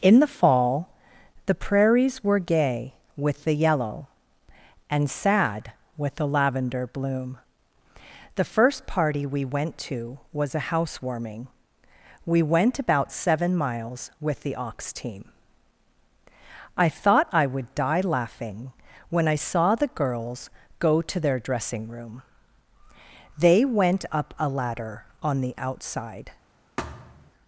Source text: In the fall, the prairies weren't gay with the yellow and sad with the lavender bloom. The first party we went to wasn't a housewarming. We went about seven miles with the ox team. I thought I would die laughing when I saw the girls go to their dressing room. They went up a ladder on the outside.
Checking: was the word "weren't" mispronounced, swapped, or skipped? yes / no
yes